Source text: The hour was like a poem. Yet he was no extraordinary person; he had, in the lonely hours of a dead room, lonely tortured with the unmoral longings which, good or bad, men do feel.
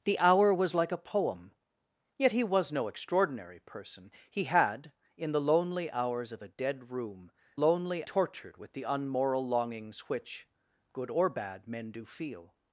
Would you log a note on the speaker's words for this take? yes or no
no